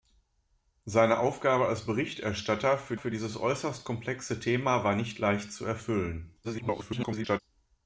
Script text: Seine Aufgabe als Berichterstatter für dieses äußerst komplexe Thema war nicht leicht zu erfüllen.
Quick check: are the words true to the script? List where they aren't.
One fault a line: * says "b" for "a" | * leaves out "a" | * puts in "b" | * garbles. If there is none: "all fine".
* puts in "für"
* garbles